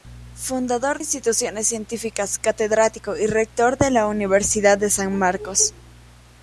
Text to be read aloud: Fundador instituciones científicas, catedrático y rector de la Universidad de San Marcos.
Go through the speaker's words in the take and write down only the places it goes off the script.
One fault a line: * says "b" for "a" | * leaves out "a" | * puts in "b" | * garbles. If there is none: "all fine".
all fine